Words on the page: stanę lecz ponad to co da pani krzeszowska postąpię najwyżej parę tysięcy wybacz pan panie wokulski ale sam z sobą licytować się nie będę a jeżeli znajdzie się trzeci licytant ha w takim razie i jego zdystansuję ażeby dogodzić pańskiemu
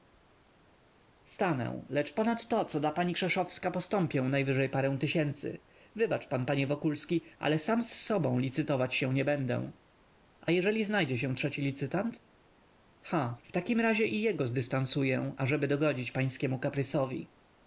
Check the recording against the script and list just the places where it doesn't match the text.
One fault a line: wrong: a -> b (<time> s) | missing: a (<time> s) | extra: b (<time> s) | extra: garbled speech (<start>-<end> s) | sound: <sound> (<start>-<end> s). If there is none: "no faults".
no faults